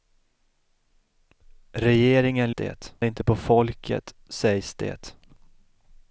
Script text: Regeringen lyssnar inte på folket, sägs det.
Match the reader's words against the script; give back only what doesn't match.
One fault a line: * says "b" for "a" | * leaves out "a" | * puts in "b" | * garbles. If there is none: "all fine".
* says "det" for "lyssnar"